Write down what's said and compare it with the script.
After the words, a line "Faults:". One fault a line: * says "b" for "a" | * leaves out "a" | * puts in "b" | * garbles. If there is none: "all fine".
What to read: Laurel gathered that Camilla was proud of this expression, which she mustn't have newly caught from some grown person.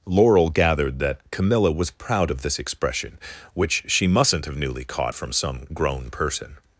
Laurel gathered that Camilla was proud of this expression, which she mustn't have newly caught from some grown person.
Faults:
all fine